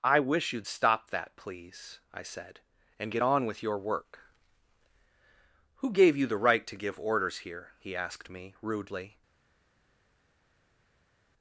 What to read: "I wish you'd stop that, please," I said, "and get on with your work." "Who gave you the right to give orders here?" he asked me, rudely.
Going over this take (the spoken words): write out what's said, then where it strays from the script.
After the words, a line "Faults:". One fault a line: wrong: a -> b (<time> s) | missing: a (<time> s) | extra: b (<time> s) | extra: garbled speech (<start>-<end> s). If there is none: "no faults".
"I wish you'd stop that, please," I said, "and get on with your work." "Who gave you the right to give orders here?" he asked me, rudely.
Faults:
no faults